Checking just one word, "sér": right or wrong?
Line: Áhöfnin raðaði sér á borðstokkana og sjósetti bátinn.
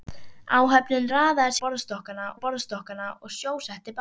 wrong